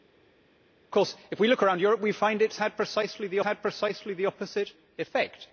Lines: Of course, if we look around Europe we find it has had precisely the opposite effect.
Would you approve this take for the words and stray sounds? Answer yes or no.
no